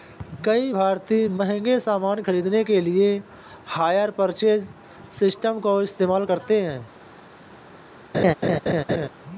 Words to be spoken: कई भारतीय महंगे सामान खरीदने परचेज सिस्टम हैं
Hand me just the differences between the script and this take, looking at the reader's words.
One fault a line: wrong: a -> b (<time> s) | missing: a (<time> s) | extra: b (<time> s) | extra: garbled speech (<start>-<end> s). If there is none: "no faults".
extra: के लिए हायर (2.6 s)
extra: का इस्तेमाल करते (5.6 s)